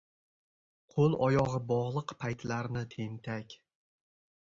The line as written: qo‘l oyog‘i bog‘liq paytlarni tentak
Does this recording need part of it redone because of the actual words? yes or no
no